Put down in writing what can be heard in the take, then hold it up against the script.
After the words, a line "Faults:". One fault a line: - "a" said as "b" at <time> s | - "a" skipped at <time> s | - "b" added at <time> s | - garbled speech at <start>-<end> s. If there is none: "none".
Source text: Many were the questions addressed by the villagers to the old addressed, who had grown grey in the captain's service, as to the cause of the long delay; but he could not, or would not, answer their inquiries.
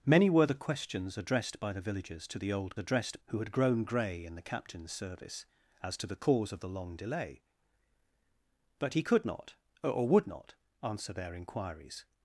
Many were the questions addressed by the villagers to the old addressed, who had grown grey in the captain's service, as to the cause of the long delay; but he could not, or would not, answer their inquiries.
Faults:
none